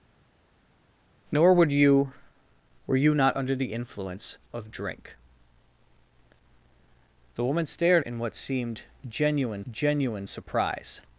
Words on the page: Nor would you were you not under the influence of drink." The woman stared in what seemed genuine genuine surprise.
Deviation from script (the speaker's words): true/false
false